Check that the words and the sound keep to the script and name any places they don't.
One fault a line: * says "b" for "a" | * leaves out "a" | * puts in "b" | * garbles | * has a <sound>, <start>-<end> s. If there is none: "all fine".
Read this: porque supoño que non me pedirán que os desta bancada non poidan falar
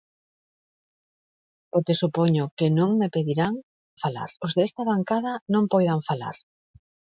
* says "falar" for "que"